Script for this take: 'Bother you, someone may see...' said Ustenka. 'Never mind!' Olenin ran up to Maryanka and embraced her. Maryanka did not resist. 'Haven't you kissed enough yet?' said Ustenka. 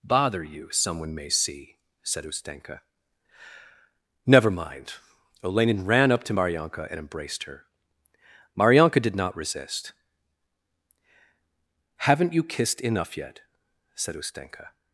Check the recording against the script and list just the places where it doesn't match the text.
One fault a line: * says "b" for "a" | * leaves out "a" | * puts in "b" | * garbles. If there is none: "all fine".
all fine